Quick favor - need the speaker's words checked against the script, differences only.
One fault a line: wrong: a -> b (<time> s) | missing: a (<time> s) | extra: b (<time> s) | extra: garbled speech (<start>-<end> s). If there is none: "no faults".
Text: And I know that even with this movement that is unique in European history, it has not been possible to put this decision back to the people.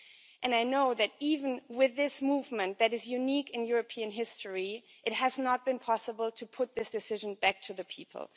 no faults